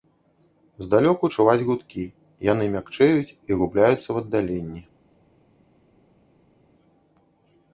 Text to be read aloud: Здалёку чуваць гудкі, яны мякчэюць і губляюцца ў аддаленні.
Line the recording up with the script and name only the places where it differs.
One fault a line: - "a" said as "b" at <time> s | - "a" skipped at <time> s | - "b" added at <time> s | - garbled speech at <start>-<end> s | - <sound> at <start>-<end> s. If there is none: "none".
none